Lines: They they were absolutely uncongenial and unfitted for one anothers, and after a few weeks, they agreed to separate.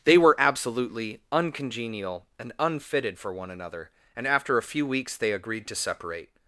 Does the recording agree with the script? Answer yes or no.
no